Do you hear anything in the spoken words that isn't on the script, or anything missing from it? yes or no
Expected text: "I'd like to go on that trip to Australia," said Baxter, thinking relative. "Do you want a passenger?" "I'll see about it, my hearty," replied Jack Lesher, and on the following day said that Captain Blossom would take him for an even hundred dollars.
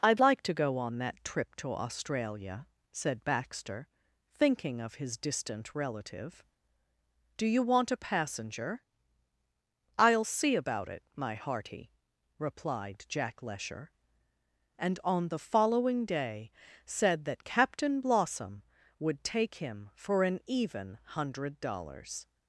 yes